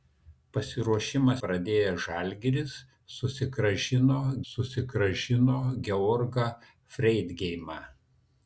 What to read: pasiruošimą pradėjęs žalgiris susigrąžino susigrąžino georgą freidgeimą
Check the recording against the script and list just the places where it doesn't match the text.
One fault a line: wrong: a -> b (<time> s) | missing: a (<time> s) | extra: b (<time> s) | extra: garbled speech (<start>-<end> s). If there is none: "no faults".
no faults